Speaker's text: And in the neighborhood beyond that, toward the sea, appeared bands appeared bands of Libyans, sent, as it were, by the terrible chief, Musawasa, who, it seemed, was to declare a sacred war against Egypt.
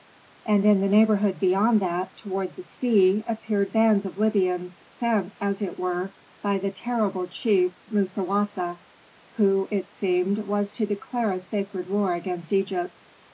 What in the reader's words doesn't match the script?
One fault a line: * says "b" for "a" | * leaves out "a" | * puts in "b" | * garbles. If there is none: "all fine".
* leaves out "appeared bands"